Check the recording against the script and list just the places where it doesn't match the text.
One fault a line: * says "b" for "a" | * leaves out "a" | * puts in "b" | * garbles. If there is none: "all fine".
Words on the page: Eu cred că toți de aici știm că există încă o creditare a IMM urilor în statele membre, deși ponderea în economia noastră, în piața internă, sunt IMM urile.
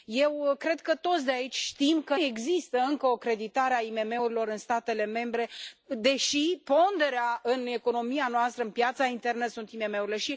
all fine